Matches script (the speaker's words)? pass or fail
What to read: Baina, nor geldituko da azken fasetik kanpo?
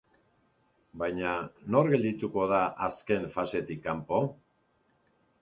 pass